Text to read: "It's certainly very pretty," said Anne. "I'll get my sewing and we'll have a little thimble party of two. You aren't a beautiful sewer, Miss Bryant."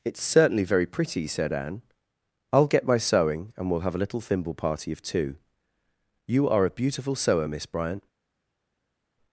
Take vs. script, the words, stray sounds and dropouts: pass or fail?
fail